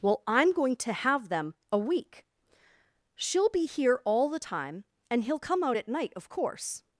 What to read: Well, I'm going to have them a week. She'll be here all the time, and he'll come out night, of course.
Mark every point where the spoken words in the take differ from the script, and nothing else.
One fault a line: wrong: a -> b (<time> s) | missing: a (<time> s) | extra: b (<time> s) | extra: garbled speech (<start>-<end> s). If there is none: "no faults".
extra: at (5.8 s)